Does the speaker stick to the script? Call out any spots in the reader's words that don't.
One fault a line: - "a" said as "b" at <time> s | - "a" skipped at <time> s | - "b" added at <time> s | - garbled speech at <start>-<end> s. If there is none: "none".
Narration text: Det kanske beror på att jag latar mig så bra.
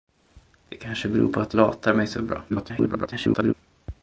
- "jag" skipped at 1.6 s
- garbled speech at 2.5-3.5 s